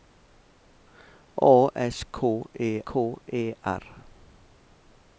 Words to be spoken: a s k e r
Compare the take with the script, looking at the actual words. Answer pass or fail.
fail